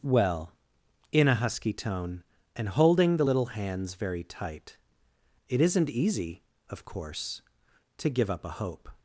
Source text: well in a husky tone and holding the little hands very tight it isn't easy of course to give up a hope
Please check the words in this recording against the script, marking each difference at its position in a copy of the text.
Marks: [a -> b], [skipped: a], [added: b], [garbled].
well in a husky tone and holding the little hands very tight it isn't easy of course to give up a hope